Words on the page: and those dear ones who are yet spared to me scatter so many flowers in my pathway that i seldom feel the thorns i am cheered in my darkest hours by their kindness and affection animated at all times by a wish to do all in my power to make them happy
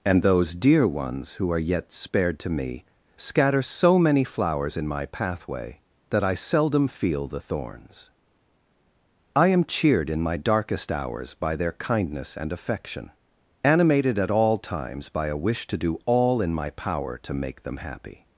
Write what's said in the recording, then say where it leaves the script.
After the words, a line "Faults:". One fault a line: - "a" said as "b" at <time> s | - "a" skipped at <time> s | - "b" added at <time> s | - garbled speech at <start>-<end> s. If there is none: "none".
and those dear ones who are yet spared to me scatter so many flowers in my pathway that i seldom feel the thorns i am cheered in my darkest hours by their kindness and affection animated at all times by a wish to do all in my power to make them happy
Faults:
none